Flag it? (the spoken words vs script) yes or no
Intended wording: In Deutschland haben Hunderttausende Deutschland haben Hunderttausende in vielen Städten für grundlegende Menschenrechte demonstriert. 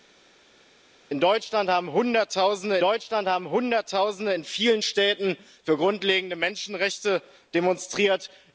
no